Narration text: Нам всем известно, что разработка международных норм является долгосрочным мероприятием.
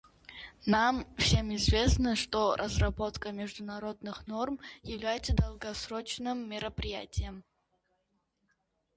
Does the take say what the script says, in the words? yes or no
yes